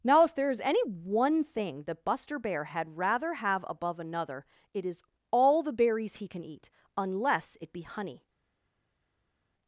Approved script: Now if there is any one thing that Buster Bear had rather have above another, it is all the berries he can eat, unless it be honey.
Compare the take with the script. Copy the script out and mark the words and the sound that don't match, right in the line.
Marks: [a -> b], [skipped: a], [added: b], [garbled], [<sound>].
Now if there is any one thing that Buster Bear had rather have above another, it is all the berries he can eat, unless it be honey.